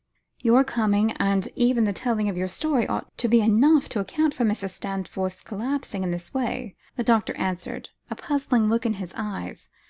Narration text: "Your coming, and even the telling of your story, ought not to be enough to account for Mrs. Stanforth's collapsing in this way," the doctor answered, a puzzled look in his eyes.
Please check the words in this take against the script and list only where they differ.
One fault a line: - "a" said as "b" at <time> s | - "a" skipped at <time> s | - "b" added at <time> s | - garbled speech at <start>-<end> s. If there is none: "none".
- "not" skipped at 3.1 s